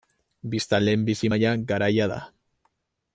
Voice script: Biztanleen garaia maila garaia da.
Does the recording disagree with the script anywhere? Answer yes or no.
yes